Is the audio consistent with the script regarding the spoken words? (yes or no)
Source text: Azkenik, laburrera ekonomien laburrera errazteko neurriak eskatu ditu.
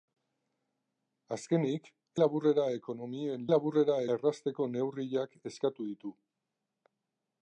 yes